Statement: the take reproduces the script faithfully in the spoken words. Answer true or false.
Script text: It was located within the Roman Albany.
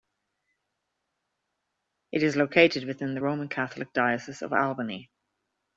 false